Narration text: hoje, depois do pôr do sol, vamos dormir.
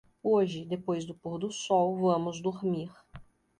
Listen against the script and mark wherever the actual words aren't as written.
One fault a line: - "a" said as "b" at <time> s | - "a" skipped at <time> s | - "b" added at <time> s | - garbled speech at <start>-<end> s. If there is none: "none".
none